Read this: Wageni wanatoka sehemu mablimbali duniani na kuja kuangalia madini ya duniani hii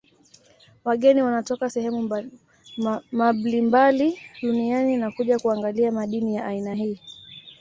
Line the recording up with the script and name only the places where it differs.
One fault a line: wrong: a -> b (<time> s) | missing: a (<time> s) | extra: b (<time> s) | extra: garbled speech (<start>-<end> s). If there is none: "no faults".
wrong: duniani -> aina (6.4 s)